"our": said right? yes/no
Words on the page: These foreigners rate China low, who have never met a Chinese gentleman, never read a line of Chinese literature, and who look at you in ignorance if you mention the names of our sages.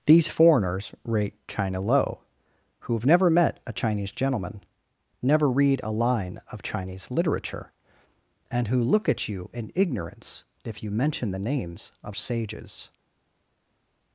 no